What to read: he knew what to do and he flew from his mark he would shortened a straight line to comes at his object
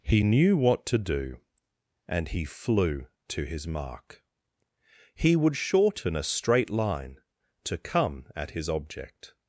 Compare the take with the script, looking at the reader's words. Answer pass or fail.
fail